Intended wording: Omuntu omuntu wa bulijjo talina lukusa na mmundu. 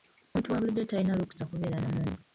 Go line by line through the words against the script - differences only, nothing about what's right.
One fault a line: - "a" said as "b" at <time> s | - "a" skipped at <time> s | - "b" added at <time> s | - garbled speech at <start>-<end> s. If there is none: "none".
- "omuntu" skipped at 0.5 s
- "kubeera" added at 1.5 s